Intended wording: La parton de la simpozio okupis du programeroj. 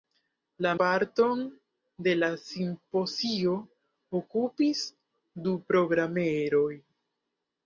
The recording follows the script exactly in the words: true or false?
true